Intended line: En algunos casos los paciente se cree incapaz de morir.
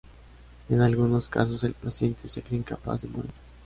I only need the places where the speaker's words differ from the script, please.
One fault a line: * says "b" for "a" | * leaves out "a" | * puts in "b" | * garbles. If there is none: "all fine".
* says "el" for "los"